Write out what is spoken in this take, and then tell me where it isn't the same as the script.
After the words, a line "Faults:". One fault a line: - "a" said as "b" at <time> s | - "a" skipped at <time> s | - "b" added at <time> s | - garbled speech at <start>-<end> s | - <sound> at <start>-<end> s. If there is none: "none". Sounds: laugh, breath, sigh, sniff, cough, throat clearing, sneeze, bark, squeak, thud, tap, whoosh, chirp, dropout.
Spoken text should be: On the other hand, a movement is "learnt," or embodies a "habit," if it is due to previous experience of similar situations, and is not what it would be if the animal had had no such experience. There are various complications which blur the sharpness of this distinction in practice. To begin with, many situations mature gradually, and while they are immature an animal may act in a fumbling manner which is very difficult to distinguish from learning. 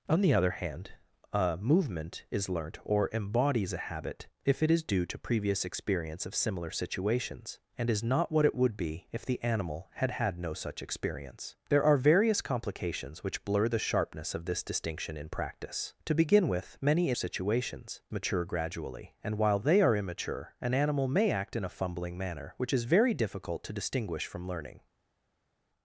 On the other hand, a movement is "learnt," or embodies a "habit," if it is due to previous experience of similar situations, and is not what it would be if the animal had had no such experience. There are various complications which blur the sharpness of this distinction in practice. To begin with, many situations mature gradually, and while they are immature an animal may act in a fumbling manner which is very difficult to distinguish from learning.
Faults:
none